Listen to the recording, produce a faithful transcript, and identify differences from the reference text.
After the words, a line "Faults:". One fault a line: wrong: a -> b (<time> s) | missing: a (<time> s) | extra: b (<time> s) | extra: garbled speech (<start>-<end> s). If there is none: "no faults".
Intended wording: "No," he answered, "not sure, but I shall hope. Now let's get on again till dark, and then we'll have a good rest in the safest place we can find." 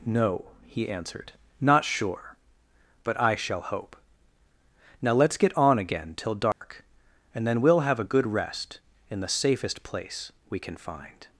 "No," he answered, "not sure, but I shall hope. Now let's get on again till dark, and then we'll have a good rest in the safest place we can find."
Faults:
no faults